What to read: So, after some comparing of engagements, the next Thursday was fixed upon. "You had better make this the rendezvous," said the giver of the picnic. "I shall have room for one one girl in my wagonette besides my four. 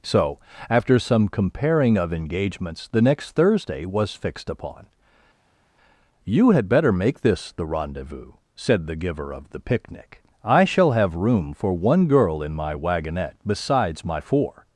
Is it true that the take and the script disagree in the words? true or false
true